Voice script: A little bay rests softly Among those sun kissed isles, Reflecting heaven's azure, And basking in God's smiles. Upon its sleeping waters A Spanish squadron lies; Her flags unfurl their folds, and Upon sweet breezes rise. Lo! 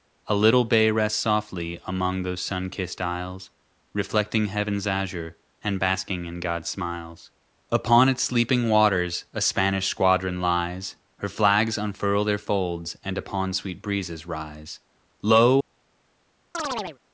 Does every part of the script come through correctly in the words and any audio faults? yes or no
no